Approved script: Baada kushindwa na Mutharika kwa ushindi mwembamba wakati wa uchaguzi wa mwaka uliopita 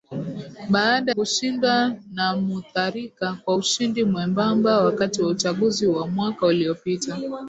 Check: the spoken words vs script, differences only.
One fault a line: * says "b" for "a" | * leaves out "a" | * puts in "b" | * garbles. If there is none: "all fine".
all fine